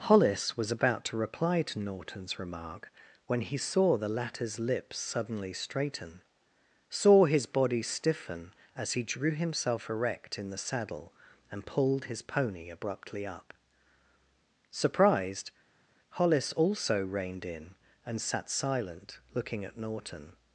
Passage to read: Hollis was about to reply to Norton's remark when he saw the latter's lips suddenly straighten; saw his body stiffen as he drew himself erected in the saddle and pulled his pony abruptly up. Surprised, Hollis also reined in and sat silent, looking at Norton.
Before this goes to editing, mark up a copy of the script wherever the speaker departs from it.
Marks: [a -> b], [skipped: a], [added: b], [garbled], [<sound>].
Hollis was about to reply to Norton's remark when he saw the latter's lips suddenly straighten; saw his body stiffen as he drew himself [erected -> erect] in the saddle and pulled his pony abruptly up. Surprised, Hollis also reined in and sat silent, looking at Norton.